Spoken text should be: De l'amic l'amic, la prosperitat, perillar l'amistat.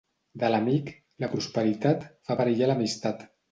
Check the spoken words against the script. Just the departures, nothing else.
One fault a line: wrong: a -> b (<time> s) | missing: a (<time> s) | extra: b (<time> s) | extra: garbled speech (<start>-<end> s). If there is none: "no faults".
missing: l'amic (0.9 s)
extra: fa (2.3 s)